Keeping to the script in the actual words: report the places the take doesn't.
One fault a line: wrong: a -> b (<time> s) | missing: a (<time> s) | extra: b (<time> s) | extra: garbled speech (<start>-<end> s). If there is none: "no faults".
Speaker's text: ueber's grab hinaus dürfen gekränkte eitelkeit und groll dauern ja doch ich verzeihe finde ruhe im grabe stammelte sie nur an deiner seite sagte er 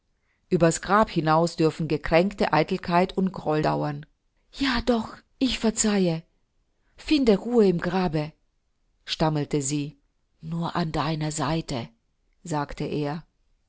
no faults